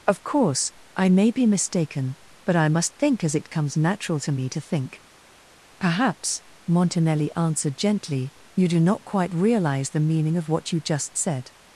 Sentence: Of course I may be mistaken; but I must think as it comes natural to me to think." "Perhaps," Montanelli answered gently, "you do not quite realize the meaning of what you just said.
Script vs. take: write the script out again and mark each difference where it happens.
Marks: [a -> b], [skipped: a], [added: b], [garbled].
Of course I may be mistaken; but I must think as it comes natural to me to think." "Perhaps," Montanelli answered gently, "you do not quite realize the meaning of what you just said.